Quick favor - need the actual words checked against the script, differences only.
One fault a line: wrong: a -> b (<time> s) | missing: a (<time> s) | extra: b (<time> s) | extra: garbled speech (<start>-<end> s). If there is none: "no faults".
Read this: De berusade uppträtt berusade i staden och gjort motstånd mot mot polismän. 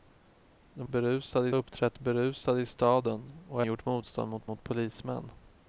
no faults